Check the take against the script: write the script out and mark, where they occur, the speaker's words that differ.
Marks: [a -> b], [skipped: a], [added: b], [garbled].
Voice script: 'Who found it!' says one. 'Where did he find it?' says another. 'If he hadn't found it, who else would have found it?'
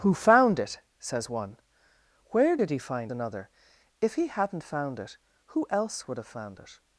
'Who found it!' says one. 'Where did he find [skipped: it?' says] another. 'If he hadn't found it, who else would have found it?'